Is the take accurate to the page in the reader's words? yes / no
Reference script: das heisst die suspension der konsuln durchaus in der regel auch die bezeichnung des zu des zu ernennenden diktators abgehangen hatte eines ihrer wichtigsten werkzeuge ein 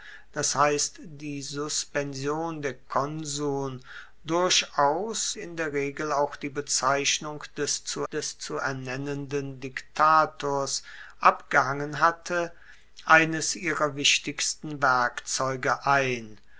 yes